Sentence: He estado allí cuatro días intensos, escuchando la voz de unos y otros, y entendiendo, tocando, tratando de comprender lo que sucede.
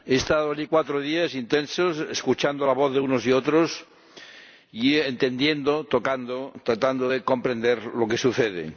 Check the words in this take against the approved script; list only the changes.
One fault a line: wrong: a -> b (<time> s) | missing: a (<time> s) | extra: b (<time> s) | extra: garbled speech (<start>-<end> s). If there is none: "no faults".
no faults